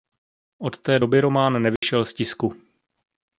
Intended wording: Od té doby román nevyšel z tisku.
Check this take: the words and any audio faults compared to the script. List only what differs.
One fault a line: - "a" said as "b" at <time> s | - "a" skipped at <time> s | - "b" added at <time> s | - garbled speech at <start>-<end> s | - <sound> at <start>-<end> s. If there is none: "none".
- dropout at 1.8-1.8 s